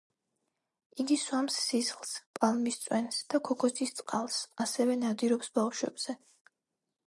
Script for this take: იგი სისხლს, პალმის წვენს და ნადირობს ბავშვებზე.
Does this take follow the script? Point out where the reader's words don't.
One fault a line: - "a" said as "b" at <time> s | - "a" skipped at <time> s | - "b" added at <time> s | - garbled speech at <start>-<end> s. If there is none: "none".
- "სვამს" added at 1.2 s
- "ქოქოსის წყალს ასევე" added at 3.5 s